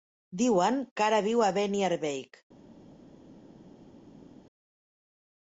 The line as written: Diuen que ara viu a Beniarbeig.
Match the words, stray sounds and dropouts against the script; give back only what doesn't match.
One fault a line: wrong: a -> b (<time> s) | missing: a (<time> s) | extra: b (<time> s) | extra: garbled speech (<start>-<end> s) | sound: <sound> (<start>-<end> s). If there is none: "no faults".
no faults